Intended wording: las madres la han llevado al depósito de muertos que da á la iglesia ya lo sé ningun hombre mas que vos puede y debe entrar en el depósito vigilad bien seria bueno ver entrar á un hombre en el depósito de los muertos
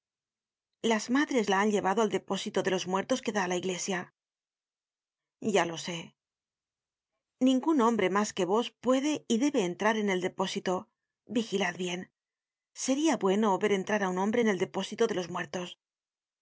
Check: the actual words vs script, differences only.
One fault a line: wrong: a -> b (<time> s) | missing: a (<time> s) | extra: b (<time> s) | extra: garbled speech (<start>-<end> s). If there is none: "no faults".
extra: los (2.7 s)